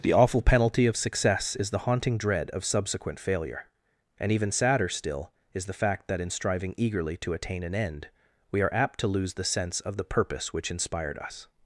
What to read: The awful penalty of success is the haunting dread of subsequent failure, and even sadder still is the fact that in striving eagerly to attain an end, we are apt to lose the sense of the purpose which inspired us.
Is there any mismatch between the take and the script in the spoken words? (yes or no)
no